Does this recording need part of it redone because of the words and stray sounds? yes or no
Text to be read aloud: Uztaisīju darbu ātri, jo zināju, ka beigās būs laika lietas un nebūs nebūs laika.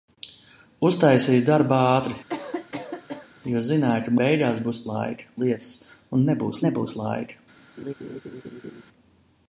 yes